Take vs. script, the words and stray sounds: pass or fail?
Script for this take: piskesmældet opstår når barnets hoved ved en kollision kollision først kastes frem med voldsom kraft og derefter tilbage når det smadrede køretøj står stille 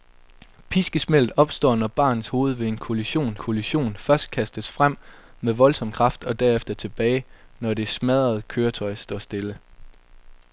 pass